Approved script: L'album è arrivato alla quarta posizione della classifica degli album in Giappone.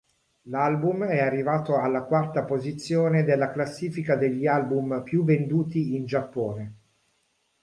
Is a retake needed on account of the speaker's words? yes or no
yes